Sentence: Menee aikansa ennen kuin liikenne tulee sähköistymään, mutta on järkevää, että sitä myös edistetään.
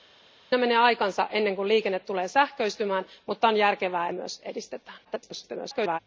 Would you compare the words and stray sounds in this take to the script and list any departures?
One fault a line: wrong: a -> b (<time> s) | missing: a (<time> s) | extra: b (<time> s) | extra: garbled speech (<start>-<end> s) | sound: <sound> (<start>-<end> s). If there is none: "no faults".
missing: että sitä (4.1 s)
extra: garbled speech (5.0-6.0 s)